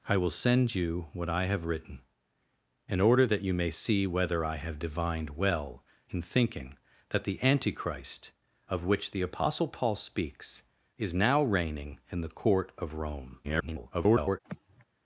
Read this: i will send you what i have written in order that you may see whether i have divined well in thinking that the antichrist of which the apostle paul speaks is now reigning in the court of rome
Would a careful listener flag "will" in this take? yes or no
no